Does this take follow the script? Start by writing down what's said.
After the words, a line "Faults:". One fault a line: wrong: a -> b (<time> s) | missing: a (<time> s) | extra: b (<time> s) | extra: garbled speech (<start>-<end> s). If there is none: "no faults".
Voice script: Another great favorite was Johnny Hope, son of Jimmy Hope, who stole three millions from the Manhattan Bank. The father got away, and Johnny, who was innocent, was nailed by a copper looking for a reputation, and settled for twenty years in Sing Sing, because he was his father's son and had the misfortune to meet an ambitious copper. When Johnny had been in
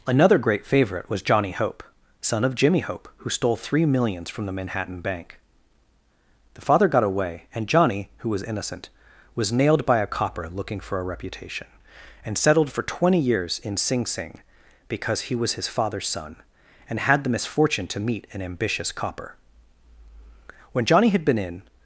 Another great favorite was Johnny Hope, son of Jimmy Hope, who stole three millions from the Manhattan Bank. The father got away, and Johnny, who was innocent, was nailed by a copper looking for a reputation, and settled for twenty years in Sing Sing, because he was his father's son and had the misfortune to meet an ambitious copper. When Johnny had been in
Faults:
no faults